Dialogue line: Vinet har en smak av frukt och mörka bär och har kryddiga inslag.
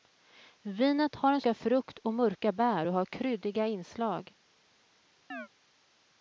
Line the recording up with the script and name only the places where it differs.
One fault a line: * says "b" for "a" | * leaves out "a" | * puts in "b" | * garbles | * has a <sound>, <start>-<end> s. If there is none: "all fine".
* leaves out "smak"
* has a chirp, 5.3-5.5 s